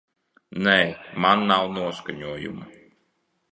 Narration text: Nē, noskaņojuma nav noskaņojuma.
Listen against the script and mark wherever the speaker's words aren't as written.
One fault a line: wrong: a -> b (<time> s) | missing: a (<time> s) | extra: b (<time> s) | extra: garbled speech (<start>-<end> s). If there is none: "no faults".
wrong: noskaņojuma -> man (1.2 s)